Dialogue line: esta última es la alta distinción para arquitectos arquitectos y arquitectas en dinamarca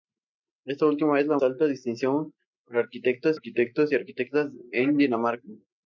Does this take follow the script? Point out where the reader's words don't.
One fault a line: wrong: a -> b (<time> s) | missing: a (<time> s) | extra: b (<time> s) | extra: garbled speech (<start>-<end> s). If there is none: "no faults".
no faults